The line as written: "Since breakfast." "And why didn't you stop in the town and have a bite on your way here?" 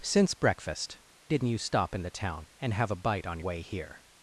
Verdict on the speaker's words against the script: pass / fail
fail